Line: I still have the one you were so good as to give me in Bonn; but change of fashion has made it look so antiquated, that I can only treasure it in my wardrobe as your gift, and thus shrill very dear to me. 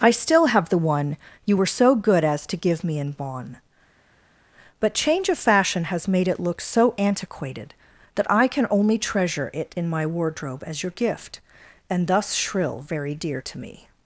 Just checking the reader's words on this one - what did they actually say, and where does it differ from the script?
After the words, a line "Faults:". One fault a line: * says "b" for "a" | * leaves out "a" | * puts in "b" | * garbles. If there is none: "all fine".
I still have the one you were so good as to give me in Bonn; but change of fashion has made it look so antiquated, that I can only treasure it in my wardrobe as your gift, and thus shrill very dear to me.
Faults:
all fine